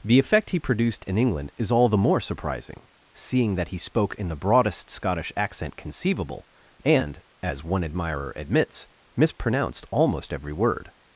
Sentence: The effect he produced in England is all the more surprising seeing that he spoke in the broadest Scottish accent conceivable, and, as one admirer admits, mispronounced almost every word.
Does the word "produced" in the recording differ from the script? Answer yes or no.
no